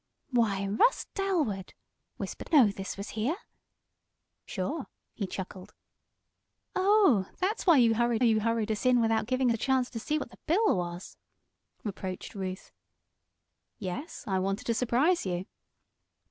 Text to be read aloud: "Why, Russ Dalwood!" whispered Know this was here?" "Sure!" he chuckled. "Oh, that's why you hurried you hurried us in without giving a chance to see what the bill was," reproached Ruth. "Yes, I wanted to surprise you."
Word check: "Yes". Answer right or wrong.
right